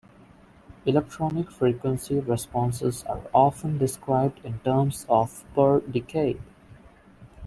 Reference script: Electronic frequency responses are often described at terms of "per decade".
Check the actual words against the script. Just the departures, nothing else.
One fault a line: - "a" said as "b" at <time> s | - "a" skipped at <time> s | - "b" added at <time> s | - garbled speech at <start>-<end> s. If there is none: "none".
- "at" said as "in" at 4.4 s